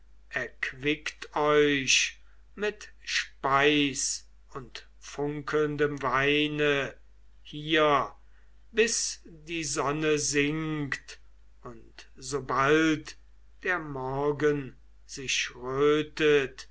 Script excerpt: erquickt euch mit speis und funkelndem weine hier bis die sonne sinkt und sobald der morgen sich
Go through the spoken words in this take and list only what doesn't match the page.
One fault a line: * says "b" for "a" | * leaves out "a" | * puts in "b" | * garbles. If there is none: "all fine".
all fine